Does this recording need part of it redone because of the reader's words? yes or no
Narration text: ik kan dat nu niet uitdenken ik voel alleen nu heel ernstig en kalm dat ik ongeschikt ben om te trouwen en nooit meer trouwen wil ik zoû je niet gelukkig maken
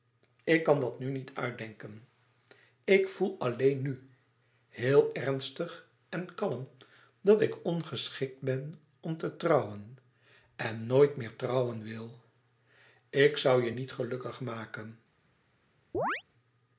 no